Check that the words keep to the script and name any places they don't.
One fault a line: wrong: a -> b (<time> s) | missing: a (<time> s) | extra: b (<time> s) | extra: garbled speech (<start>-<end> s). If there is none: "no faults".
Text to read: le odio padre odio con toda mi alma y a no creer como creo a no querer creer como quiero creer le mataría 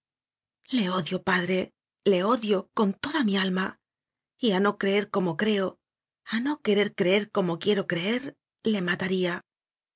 extra: le (2.0 s)